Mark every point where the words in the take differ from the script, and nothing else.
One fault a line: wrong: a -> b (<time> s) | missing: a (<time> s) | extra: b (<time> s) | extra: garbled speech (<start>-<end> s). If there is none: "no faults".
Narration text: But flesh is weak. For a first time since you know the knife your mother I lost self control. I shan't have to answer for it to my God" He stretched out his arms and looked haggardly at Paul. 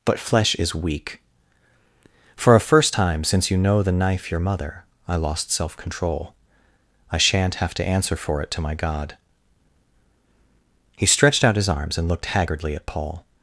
no faults